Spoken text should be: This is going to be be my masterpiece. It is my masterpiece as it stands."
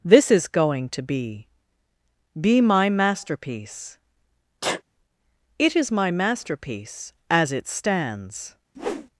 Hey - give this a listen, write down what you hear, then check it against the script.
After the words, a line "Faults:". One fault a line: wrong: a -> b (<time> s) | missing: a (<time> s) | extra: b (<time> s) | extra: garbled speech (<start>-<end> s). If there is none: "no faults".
This is going to be be my masterpiece. It is my masterpiece as it stands."
Faults:
no faults